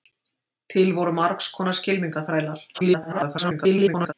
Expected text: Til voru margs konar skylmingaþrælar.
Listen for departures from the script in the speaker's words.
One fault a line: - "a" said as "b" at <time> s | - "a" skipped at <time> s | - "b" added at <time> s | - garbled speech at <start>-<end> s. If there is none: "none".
- garbled speech at 2.7-4.1 s